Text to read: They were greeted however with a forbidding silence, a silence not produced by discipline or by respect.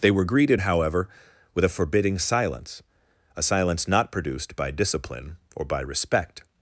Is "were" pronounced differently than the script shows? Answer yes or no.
no